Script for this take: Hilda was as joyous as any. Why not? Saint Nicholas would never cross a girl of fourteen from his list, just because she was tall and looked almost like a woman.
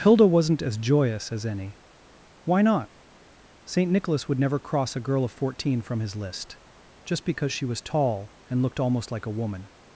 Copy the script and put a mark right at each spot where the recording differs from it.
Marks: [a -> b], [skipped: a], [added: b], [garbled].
Hilda [was -> wasn't] as joyous as any. Why not? Saint Nicholas would never cross a girl of fourteen from his list, just because she was tall and looked almost like a woman.